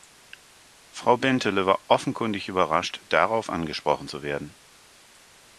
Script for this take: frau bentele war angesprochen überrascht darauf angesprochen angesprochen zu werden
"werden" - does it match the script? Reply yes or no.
yes